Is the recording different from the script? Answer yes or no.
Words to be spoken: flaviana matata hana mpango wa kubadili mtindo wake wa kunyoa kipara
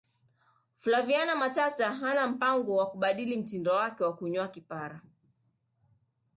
no